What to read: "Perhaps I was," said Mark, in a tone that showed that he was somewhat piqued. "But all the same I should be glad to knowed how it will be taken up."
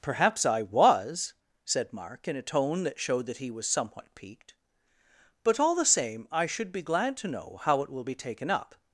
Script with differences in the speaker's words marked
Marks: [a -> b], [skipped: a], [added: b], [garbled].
"Perhaps I was," said Mark, in a tone that showed that he was somewhat piqued. "But all the same I should be glad to [knowed -> know] how it will be taken up."